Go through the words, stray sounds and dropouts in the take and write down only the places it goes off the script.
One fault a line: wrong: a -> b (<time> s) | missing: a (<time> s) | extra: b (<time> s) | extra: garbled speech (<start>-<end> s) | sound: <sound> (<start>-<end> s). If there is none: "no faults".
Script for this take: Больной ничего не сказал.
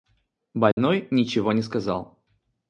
sound: dropout (0.7-0.8 s)